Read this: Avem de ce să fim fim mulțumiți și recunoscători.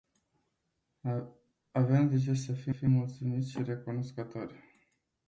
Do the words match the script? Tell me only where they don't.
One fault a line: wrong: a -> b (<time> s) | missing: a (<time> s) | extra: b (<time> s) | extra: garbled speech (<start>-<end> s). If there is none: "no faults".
no faults